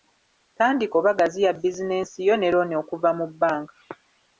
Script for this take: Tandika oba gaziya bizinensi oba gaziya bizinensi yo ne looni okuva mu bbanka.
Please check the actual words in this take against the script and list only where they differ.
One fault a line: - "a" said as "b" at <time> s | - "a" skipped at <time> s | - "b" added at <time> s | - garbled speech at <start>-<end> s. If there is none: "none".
- "oba gaziya bizinensi" skipped at 2.2 s